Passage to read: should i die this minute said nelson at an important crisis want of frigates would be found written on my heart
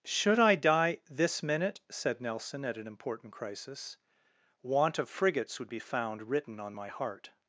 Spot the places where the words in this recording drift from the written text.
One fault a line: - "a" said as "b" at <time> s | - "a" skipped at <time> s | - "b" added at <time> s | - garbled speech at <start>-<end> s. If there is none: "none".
none